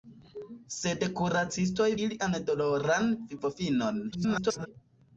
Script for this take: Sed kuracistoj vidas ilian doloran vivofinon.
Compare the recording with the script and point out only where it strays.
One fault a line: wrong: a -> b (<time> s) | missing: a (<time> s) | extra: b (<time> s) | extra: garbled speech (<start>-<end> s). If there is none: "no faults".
missing: vidas (1.9 s)
extra: garbled speech (4.1-4.7 s)